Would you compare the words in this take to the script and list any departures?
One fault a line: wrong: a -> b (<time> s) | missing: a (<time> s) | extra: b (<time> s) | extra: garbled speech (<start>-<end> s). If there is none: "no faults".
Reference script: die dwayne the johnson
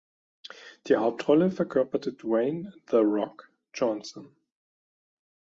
extra: hauptrolle verkörperte (0.9 s)
extra: rock (3.0 s)